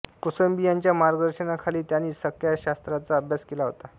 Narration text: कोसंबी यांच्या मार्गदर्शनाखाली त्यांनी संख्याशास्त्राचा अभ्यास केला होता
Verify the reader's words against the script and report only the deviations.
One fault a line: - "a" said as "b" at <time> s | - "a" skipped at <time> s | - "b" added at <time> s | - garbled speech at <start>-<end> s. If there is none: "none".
none